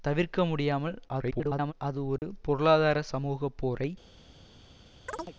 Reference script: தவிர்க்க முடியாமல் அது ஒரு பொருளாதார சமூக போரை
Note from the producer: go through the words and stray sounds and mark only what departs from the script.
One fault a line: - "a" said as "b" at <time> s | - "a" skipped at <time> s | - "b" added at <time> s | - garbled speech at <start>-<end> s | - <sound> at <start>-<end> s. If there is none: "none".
- garbled speech at 1.1-1.7 s
- dropout at 2.2-2.2 s
- chirp at 5.1-5.4 s